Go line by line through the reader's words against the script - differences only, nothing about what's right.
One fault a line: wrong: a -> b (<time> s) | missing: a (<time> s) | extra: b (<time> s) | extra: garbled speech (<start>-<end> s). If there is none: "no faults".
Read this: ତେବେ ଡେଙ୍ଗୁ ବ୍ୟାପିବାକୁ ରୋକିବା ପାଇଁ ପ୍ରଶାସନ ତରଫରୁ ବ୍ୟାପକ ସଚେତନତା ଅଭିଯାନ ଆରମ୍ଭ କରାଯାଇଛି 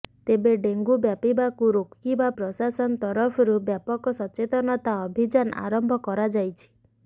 missing: ପାଇଁ (2.3 s)